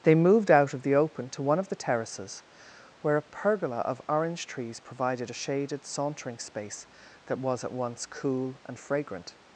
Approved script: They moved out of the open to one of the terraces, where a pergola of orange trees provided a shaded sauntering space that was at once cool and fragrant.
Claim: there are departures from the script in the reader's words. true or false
false